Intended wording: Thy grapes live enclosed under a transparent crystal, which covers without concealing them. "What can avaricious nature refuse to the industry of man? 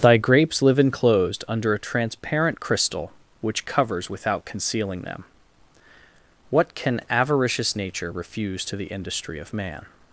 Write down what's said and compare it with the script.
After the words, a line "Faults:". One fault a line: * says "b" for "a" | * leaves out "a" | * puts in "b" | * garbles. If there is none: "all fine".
Thy grapes live enclosed under a transparent crystal, which covers without concealing them. "What can avaricious nature refuse to the industry of man?
Faults:
all fine